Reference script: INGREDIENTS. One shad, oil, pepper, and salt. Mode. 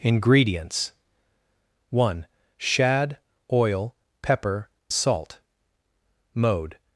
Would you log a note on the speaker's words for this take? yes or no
yes